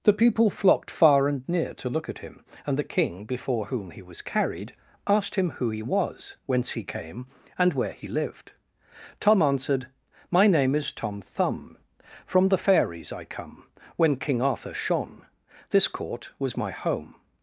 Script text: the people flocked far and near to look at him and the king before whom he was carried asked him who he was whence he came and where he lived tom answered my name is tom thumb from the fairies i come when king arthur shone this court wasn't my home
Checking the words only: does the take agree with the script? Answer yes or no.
no